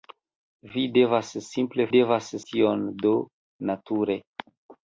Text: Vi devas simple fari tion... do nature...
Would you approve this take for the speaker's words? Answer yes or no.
no